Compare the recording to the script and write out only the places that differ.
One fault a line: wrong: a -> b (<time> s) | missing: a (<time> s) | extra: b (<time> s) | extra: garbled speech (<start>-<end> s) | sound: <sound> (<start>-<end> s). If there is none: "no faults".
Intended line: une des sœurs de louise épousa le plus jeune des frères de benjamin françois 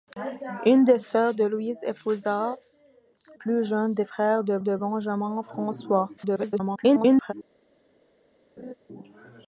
missing: le (2.6 s)
extra: de (4.6 s)
extra: garbled speech (6.2-7.3 s)
sound: laugh (8.6-8.7 s)